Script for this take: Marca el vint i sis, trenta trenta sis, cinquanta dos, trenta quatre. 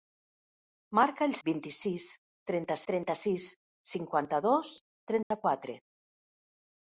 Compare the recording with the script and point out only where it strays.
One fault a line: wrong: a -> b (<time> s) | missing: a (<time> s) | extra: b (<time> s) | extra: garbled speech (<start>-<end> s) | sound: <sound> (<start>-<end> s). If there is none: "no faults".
sound: dropout (5.2-5.3 s)